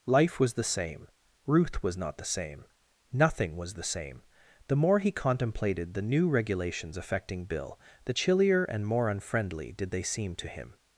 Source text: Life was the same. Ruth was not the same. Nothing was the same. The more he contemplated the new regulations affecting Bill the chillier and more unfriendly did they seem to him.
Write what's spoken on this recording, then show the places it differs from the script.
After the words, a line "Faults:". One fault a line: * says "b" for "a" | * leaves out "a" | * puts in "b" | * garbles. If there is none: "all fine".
Life was the same. Ruth was not the same. Nothing was the same. The more he contemplated the new regulations affecting Bill the chillier and more unfriendly did they seem to him.
Faults:
all fine